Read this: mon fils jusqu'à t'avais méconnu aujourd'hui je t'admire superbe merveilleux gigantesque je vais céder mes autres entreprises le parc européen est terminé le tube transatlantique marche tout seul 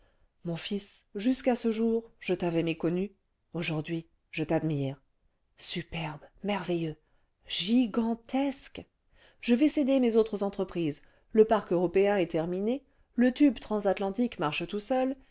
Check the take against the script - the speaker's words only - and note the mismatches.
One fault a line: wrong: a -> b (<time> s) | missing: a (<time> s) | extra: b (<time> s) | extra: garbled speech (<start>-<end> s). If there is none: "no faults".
extra: ce jour je (1.6 s)